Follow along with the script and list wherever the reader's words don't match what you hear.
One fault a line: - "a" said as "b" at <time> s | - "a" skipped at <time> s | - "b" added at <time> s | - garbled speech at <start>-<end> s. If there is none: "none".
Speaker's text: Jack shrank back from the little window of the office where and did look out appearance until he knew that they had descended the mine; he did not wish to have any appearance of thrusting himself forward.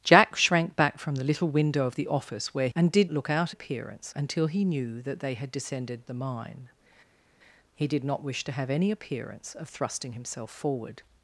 none